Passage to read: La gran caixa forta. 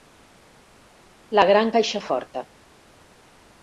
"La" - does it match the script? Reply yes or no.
yes